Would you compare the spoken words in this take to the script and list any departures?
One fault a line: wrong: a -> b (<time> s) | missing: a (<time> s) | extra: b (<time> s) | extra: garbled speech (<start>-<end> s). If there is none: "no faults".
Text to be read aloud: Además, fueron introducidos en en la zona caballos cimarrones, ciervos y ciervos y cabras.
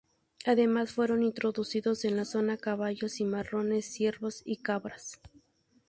missing: en (2.2 s)
missing: ciervos y (4.6 s)